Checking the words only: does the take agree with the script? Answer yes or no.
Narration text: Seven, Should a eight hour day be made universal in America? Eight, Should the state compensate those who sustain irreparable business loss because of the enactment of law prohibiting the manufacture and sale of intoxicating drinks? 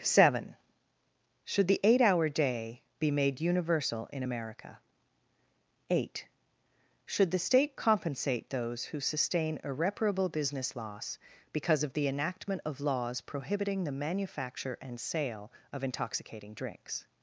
no